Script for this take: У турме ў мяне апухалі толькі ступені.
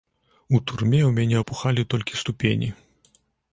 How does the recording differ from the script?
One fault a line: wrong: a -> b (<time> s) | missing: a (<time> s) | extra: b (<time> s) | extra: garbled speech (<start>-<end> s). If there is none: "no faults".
no faults